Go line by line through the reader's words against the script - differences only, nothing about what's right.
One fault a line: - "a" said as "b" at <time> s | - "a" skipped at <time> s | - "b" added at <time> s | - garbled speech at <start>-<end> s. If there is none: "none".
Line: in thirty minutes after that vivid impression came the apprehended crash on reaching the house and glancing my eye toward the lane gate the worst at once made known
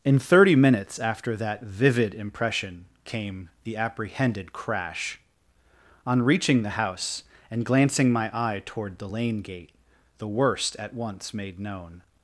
none